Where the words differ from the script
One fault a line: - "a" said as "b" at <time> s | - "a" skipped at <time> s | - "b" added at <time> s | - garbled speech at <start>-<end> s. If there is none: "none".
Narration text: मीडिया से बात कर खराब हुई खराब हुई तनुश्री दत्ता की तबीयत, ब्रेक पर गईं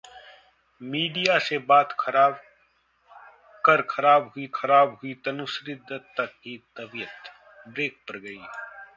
none